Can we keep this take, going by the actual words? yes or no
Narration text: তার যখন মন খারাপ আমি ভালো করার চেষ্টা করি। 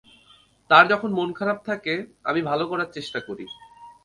no